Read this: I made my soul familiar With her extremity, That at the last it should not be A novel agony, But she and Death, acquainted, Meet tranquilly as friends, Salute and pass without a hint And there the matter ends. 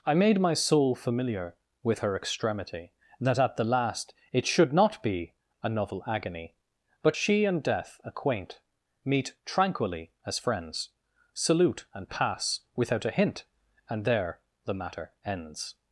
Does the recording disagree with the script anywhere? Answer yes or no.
yes